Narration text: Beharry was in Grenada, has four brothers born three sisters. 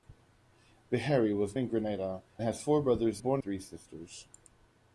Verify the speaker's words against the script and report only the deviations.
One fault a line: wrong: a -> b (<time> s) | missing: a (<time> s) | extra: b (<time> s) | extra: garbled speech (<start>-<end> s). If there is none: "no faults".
no faults